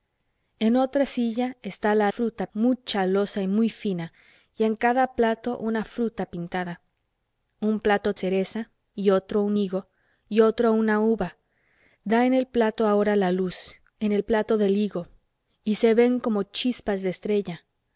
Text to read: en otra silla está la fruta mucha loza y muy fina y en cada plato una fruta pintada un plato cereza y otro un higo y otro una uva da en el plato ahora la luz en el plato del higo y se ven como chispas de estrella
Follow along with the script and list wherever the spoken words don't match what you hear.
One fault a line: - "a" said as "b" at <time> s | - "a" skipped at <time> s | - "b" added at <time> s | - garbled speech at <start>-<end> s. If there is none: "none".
none